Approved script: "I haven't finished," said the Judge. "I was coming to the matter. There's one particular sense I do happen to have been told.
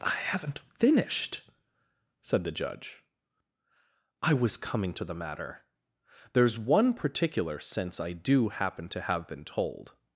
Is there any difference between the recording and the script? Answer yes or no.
no